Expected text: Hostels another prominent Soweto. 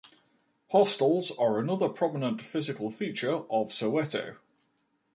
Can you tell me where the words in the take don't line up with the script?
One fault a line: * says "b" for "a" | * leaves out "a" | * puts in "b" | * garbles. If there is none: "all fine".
* puts in "are"
* puts in "physical feature of"